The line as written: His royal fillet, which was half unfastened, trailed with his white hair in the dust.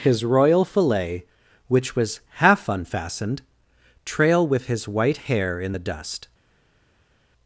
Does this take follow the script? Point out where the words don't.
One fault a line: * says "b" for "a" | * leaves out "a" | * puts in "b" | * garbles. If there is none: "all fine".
* says "trail" for "trailed"